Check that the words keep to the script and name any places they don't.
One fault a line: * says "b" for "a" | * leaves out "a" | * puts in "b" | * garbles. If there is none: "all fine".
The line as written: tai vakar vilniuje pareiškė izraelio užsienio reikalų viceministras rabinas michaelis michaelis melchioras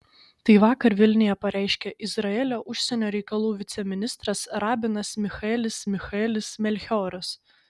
all fine